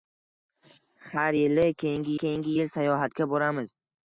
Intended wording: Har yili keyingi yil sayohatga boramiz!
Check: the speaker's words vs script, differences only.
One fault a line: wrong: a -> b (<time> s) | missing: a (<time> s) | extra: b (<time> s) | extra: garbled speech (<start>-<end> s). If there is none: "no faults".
extra: keyingi (2.2 s)